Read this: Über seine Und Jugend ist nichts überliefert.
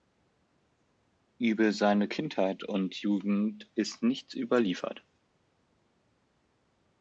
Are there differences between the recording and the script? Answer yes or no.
yes